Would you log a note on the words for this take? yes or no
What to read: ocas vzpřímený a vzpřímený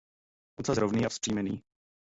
yes